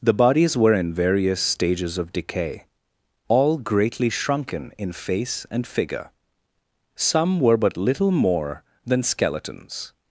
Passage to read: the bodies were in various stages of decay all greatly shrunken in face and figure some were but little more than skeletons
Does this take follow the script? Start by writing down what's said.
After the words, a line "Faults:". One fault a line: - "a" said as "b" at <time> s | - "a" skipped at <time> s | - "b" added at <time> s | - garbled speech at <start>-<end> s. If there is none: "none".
the bodies were in various stages of decay all greatly shrunken in face and figure some were but little more than skeletons
Faults:
none